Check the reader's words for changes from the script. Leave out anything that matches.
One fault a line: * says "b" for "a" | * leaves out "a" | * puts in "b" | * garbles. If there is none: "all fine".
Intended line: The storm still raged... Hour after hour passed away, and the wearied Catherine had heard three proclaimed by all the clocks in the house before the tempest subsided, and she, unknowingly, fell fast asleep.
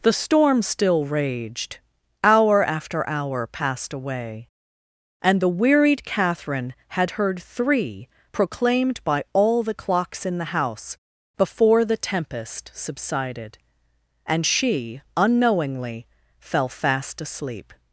all fine